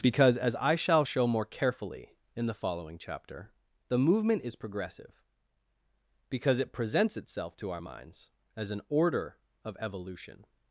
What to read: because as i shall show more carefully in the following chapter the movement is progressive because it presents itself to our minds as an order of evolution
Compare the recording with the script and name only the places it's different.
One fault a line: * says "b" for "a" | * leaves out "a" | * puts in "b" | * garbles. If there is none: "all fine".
all fine